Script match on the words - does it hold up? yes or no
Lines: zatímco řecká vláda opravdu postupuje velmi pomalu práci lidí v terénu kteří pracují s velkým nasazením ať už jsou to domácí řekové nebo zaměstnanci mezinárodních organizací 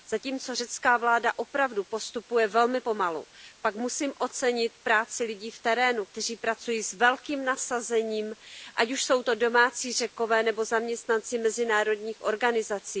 no